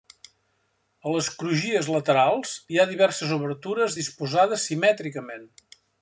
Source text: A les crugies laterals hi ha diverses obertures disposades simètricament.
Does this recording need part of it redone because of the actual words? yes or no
no